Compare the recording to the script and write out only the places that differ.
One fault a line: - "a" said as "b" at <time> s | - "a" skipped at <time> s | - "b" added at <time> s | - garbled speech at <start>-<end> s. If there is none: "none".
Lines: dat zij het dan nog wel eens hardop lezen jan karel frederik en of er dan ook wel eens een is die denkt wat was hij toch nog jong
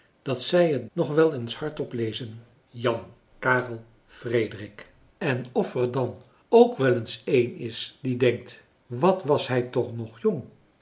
- "dan" skipped at 0.9 s